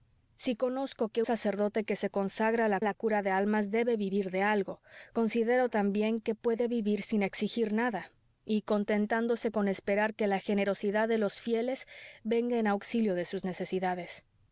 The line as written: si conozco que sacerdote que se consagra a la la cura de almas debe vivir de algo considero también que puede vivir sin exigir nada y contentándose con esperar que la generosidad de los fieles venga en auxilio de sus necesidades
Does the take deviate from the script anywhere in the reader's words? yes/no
no